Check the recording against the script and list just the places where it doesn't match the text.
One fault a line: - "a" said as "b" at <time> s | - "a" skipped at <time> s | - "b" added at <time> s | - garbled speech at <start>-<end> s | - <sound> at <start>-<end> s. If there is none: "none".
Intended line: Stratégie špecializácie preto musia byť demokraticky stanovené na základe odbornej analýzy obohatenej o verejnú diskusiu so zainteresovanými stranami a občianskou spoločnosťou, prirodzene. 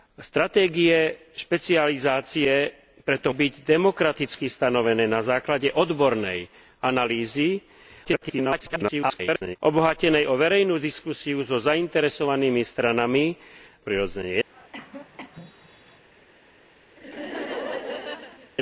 - "musia" skipped at 3.3 s
- garbled speech at 8.0-9.6 s
- "a občianskou spoločnosťou" skipped at 13.3 s
- cough at 14.5-16.0 s
- laugh at 17.0-18.5 s